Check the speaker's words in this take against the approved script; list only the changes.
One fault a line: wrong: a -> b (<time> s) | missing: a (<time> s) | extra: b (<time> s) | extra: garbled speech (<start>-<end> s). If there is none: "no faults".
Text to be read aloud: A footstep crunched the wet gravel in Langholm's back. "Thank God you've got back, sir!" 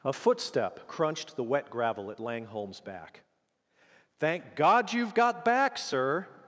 wrong: in -> at (2.1 s)